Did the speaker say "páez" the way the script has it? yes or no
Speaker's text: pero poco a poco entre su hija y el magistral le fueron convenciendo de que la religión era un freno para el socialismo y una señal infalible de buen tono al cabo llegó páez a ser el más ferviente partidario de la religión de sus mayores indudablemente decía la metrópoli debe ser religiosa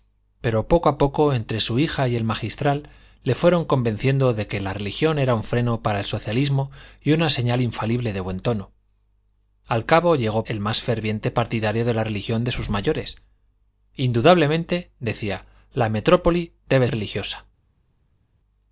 no